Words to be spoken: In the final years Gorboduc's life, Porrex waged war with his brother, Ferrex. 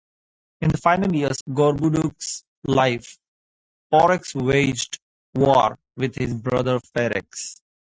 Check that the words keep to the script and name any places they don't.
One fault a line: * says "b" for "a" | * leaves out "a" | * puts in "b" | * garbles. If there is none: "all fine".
all fine